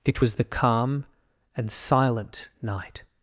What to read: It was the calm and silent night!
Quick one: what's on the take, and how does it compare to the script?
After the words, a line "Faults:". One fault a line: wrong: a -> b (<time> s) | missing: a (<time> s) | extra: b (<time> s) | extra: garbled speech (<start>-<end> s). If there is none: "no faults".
It was the calm and silent night!
Faults:
no faults